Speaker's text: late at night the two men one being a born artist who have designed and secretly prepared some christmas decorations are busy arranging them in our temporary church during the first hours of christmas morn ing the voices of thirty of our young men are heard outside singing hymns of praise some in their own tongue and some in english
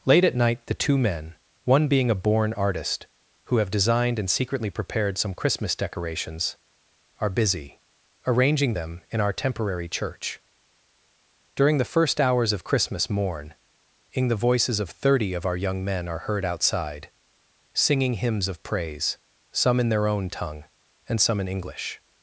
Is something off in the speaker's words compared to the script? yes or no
no